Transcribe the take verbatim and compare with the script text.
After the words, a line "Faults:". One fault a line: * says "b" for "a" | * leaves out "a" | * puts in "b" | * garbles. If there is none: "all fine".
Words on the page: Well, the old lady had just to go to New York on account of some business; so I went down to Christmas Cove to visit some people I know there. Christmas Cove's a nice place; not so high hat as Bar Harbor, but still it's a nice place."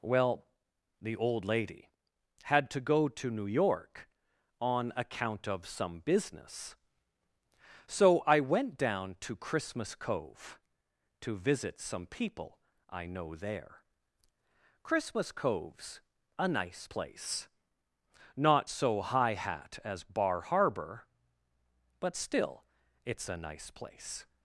Well, the old lady had to go to New York on account of some business; so I went down to Christmas Cove to visit some people I know there. Christmas Cove's a nice place; not so high hat as Bar Harbor, but still it's a nice place."
Faults:
* leaves out "just"